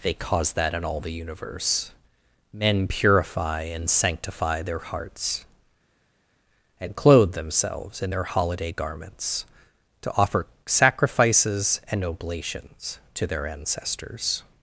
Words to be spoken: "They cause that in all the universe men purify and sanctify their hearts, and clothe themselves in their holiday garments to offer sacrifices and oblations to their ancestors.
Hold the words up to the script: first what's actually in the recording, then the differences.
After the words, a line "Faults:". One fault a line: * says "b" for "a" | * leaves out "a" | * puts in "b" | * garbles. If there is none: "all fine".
"They cause that in all the universe men purify and sanctify their hearts, and clothe themselves in their holiday garments to offer sacrifices and oblations to their ancestors.
Faults:
all fine